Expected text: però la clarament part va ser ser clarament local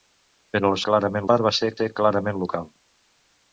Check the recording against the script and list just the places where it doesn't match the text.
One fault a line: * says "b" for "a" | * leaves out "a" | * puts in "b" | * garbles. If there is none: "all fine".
all fine